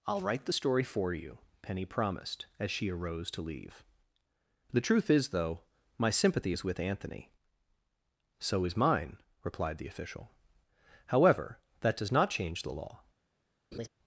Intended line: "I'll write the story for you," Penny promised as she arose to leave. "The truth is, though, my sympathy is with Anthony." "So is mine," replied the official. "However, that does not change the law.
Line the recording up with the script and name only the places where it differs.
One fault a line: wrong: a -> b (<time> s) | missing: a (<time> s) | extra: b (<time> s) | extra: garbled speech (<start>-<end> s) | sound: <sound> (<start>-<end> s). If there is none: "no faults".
sound: laugh (13.7-13.9 s)